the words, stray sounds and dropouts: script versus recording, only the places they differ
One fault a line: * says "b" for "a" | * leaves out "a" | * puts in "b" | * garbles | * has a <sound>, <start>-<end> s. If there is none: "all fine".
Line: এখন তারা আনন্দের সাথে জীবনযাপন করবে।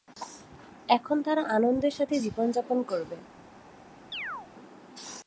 * has a chirp, 4.1-4.5 s